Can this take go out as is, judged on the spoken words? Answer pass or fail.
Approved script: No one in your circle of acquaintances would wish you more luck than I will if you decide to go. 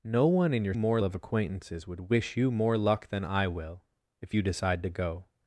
fail